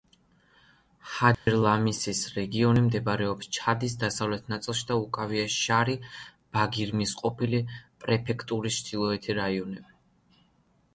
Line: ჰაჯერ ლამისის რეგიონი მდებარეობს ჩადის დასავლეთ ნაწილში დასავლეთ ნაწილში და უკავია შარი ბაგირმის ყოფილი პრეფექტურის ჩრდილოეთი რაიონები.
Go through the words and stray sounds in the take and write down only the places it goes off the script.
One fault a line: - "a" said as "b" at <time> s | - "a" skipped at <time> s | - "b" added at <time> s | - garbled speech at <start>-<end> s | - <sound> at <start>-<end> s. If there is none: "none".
- dropout at 1.3-1.5 s
- "დასავლეთ ნაწილში" skipped at 4.9 s